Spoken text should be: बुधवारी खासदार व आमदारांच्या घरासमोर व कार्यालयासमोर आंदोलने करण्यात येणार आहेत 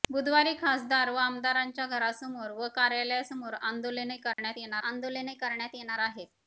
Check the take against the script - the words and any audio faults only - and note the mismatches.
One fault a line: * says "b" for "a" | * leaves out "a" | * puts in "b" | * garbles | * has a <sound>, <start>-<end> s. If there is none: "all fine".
* has a dropout, 4.3-4.4 s
* puts in "आंदोलने करण्यात येणार"